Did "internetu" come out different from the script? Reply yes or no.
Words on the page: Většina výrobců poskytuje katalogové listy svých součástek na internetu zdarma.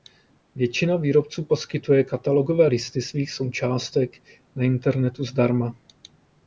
no